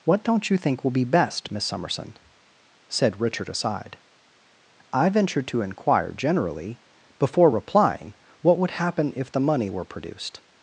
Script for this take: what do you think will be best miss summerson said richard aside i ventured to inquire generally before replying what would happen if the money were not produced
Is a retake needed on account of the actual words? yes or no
yes